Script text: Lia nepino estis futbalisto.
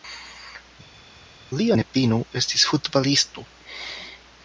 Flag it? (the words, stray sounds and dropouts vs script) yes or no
no